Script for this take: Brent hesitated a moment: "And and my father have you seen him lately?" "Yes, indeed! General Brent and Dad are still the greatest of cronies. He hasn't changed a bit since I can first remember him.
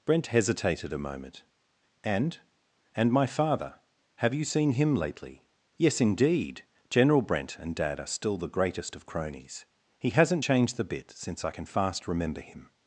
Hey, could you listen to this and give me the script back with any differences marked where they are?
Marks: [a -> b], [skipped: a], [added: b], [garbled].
Brent hesitated a moment: "And and my father have you seen him lately?" "Yes, indeed! General Brent and Dad are still the greatest of cronies. He hasn't changed [a -> the] bit since I can [first -> fast] remember him.